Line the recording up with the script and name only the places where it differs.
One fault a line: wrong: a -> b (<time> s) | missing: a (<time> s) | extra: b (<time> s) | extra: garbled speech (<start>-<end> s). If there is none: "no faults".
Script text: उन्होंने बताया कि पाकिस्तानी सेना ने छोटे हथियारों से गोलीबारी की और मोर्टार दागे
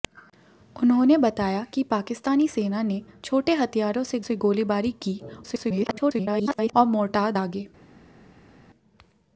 extra: से (4.2 s)
extra: garbled speech (5.4-6.7 s)